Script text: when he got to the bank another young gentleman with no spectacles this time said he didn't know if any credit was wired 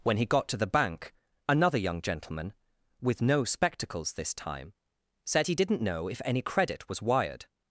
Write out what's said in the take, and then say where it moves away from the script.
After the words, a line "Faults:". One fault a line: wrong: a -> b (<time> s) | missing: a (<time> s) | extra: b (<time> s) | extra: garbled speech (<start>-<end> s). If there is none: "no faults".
when he got to the bank another young gentleman with no spectacles this time said he didn't know if any credit was wired
Faults:
no faults